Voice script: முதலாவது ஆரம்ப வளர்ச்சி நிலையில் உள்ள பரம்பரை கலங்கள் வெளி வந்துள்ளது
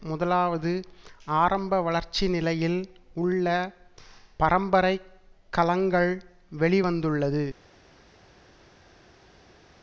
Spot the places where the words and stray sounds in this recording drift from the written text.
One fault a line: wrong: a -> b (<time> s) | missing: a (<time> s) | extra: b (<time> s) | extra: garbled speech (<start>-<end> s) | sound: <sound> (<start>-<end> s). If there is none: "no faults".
no faults